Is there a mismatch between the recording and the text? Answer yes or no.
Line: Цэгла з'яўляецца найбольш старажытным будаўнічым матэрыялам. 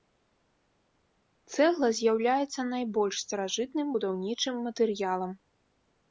no